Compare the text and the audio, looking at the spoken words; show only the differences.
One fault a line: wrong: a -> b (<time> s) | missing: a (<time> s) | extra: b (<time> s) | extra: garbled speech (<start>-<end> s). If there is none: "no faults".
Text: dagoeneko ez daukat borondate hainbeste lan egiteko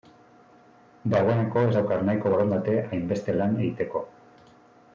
extra: nahiko (2.1 s)